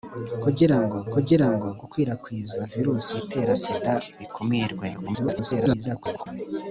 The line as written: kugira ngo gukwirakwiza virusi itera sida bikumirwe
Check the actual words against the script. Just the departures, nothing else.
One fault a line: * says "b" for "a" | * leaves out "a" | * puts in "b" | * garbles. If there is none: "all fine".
* puts in "kugira ngo"
* garbles